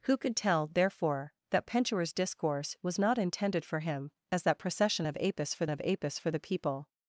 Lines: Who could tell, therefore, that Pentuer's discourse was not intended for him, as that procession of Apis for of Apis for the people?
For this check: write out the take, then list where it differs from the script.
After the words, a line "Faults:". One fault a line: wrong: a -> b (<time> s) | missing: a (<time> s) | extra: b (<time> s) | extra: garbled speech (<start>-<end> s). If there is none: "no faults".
Who could tell, therefore, that Pentuer's discourse was not intended for him, as that procession of Apis for of Apis for the people?
Faults:
no faults